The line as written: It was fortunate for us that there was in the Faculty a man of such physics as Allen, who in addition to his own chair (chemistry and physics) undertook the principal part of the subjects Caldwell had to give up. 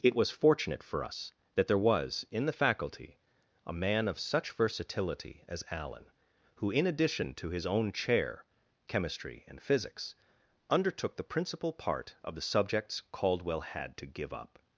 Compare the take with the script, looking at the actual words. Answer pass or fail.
fail